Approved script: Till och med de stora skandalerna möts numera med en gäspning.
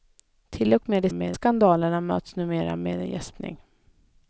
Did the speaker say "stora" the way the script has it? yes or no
no